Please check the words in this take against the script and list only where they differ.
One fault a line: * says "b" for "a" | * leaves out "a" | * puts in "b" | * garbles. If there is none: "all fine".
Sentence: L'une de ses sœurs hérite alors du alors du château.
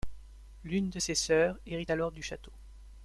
* leaves out "alors du"